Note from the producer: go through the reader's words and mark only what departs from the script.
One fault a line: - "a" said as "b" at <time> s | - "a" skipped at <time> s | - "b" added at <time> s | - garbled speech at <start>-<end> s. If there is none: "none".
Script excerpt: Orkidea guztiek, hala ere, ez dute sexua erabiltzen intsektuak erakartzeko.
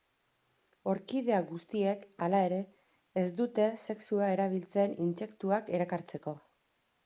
none